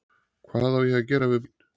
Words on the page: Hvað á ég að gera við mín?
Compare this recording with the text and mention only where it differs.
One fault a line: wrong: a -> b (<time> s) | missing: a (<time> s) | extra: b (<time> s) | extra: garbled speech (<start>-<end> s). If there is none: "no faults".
no faults